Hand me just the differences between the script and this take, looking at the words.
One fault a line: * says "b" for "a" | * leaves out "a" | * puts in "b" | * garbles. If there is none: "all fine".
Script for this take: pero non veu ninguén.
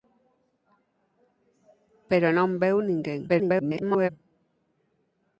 * garbles